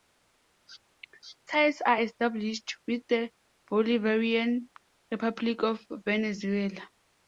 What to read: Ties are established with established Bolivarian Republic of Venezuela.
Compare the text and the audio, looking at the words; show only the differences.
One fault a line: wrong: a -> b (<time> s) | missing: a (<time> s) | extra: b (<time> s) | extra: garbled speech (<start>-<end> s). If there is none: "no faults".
wrong: established -> the (3.1 s)